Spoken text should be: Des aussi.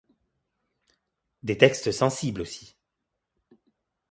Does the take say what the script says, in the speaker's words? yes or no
no